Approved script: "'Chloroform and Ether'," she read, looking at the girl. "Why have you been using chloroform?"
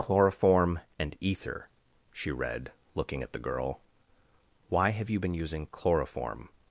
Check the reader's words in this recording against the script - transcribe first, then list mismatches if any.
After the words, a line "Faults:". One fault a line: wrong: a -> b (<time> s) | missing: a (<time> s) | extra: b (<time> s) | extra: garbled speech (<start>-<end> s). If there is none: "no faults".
"'Chloroform and Ether'," she read, looking at the girl. "Why have you been using chloroform?"
Faults:
no faults